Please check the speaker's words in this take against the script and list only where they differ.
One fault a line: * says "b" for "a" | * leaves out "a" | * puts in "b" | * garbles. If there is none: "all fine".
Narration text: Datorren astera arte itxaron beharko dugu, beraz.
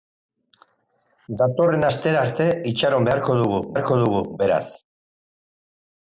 * puts in "beharko dugu"